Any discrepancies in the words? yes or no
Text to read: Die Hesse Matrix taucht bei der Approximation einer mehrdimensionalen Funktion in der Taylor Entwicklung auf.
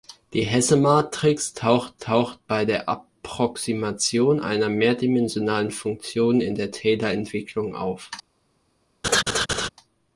yes